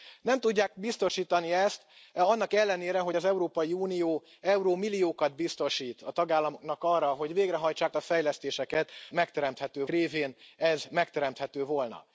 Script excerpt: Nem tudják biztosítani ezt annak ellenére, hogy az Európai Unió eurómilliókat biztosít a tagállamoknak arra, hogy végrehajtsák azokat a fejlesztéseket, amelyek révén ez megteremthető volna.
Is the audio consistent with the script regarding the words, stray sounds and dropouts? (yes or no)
no